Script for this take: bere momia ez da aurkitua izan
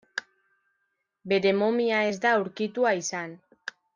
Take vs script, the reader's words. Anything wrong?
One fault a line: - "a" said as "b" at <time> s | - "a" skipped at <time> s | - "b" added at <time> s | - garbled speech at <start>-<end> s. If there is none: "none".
none